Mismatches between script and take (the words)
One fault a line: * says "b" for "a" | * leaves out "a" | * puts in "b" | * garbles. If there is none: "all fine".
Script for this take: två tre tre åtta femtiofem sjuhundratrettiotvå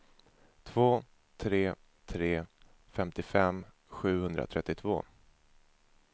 * leaves out "åtta"